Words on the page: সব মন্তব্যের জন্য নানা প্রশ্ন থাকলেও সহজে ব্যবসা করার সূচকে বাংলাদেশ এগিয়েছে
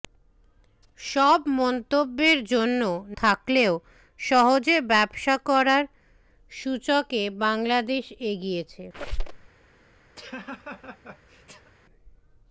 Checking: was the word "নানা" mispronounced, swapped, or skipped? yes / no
yes